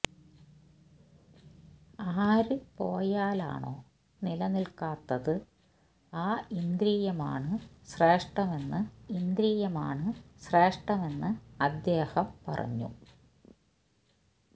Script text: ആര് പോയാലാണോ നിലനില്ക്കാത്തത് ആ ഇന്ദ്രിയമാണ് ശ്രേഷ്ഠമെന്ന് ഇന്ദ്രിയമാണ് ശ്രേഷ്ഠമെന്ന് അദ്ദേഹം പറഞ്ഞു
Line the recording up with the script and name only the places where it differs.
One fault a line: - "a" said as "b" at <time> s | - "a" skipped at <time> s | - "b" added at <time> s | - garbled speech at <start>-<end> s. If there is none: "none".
none